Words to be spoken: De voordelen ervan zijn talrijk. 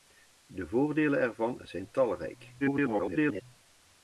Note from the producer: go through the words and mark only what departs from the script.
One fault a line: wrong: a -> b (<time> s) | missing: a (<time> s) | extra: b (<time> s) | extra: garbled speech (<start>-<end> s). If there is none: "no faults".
extra: garbled speech (2.6-3.4 s)